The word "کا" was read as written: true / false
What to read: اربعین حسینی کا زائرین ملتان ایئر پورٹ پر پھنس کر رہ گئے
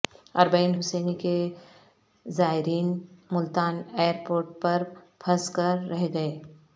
false